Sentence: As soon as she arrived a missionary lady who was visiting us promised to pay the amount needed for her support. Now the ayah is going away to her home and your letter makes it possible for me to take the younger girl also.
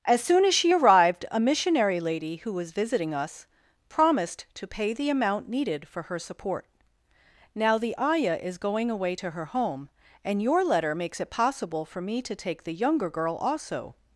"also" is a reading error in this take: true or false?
false